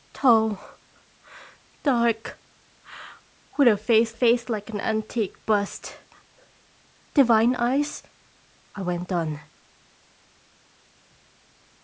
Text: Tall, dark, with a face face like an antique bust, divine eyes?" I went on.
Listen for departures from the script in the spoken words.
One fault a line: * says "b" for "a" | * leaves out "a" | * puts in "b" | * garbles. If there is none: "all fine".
all fine